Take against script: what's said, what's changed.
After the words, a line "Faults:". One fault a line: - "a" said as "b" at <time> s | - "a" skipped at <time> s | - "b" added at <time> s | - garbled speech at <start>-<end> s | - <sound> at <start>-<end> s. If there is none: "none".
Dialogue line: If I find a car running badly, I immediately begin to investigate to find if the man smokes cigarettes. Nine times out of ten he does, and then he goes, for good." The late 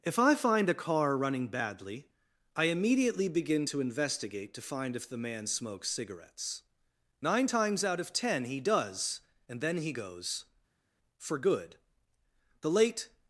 If I find a car running badly, I immediately begin to investigate to find if the man smokes cigarettes. Nine times out of ten he does, and then he goes, for good." The late
Faults:
none